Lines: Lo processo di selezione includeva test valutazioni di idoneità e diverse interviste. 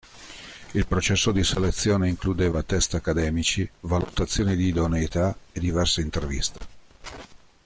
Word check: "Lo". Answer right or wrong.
wrong